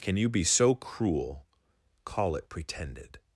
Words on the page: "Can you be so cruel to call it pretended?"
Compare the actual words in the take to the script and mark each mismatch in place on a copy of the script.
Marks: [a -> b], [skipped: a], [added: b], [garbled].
"Can you be so cruel [skipped: to] call it pretended?"